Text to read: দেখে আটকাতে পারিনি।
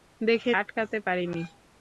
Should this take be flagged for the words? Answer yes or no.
no